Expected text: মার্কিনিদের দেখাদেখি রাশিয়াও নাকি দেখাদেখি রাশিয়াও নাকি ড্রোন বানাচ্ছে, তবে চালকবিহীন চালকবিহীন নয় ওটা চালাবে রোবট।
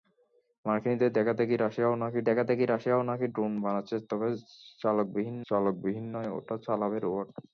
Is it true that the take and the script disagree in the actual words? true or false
false